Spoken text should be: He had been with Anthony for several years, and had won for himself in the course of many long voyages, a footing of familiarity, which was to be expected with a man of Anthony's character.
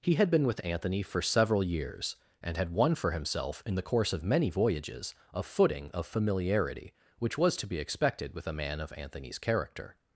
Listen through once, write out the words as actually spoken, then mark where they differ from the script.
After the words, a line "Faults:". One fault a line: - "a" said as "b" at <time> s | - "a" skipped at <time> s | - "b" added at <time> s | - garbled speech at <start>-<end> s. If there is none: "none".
He had been with Anthony for several years, and had won for himself in the course of many voyages, a footing of familiarity, which was to be expected with a man of Anthony's character.
Faults:
- "long" skipped at 4.5 s